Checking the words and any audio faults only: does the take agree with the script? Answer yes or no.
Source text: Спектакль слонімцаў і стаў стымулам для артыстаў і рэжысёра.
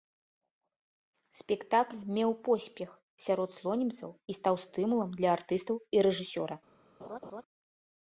no